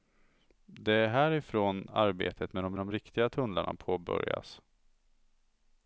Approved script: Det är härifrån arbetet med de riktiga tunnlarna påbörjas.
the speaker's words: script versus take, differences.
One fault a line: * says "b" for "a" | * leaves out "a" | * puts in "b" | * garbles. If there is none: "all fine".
* puts in "de"